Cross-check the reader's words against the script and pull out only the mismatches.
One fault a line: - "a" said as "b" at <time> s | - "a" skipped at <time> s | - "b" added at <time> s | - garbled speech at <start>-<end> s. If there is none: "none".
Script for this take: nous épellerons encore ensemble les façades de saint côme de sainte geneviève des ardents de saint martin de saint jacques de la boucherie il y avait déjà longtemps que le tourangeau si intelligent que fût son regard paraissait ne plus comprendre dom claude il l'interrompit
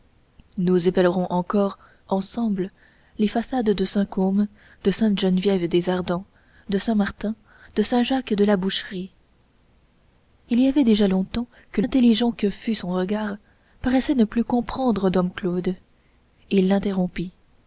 - "le tourangeau si" skipped at 11.8 s